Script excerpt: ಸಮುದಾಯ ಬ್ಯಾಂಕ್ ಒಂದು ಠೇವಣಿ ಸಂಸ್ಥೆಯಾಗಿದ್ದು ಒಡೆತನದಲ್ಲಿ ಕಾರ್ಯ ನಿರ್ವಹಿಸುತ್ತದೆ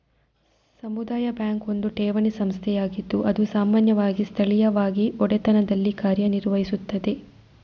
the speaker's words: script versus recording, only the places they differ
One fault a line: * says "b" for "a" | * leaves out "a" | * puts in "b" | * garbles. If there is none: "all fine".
* puts in "ಅದು ಸಾಮಾನ್ಯವಾಗಿ ಸ್ಥಳೀಯವಾಗಿ"